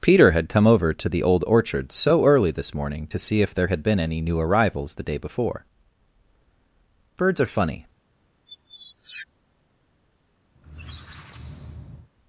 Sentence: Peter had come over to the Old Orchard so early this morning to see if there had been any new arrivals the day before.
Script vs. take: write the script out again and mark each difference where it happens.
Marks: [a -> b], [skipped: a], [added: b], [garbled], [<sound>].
Peter had come over to the Old Orchard so early this morning to see if there had been any new arrivals the day before. [added: Birds are funny] [squeak] [squeak]